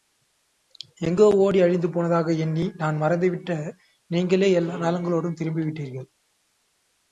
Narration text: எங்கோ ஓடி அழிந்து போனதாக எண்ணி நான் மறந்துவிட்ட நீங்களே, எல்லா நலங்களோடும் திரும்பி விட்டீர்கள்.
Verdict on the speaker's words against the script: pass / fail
pass